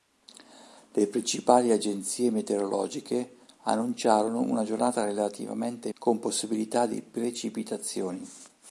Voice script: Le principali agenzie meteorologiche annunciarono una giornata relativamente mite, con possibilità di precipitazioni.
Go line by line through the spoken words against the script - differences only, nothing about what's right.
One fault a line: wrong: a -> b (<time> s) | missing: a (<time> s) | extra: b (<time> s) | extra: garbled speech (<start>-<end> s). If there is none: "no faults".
missing: mite (5.9 s)